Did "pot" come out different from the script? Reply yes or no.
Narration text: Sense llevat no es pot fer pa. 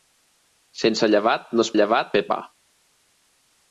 yes